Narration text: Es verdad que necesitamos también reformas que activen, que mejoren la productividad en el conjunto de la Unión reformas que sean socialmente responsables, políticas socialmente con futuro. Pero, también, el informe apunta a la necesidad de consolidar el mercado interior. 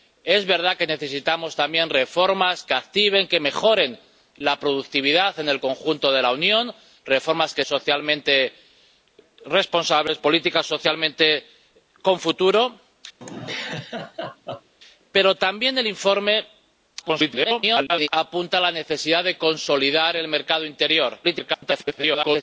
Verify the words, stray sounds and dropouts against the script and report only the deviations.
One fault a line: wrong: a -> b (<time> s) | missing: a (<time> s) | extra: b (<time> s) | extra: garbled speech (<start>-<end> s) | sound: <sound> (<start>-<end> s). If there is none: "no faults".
missing: sean (7.6 s)
sound: laugh (13.2-14.7 s)
extra: garbled speech (17.0-18.1 s)
extra: garbled speech (21.2-22.4 s)